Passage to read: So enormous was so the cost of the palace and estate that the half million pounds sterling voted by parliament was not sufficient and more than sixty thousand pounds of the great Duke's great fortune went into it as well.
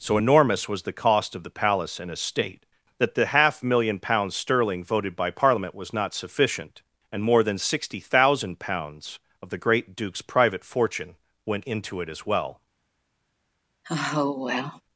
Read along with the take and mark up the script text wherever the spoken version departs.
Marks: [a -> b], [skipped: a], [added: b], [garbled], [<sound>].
So enormous was [skipped: so] the cost of the palace and estate that the half million pounds sterling voted by parliament was not sufficient and more than sixty thousand pounds of the great Duke's [great -> private] fortune went into it as well. [sigh]